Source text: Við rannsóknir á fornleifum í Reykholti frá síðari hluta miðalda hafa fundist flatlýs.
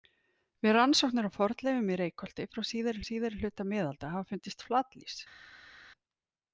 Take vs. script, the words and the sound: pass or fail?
fail